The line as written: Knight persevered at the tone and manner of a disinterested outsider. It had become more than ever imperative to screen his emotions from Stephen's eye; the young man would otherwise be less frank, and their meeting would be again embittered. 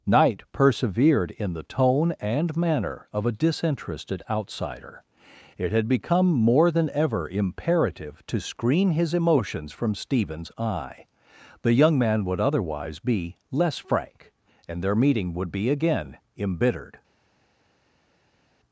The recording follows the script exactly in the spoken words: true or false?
false